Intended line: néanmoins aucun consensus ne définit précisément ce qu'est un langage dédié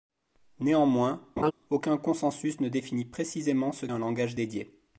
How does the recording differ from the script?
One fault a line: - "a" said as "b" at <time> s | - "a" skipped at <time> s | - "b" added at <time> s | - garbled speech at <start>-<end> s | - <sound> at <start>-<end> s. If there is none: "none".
- laugh at 1.4-1.5 s
- "qu'est" skipped at 3.9 s